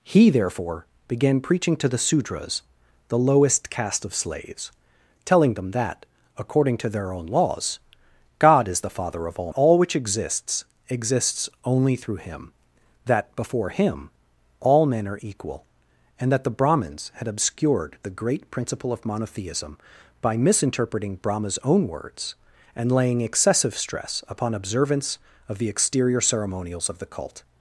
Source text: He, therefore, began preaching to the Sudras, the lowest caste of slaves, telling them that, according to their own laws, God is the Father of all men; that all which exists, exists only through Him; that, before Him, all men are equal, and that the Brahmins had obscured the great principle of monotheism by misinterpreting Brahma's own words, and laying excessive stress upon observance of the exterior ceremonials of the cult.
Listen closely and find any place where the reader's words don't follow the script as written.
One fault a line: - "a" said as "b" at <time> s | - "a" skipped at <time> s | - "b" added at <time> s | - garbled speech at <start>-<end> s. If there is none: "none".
- "men that" skipped at 9.5 s